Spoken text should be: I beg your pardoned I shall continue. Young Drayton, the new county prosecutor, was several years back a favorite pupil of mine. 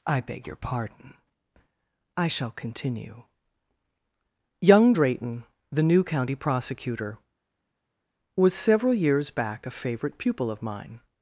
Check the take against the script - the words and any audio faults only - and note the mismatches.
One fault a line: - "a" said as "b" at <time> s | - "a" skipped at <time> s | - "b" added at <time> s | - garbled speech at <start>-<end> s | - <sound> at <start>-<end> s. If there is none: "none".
- "pardoned" said as "pardon" at 0.6 s